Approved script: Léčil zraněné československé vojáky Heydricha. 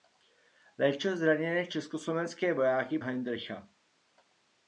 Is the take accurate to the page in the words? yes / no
yes